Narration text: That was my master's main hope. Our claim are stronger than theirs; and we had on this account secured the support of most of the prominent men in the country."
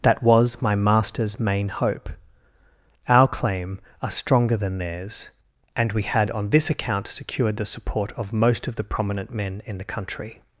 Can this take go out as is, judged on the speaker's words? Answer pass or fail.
pass